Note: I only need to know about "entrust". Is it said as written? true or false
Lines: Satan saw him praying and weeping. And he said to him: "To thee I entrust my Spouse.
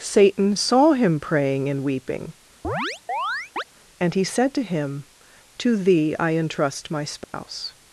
true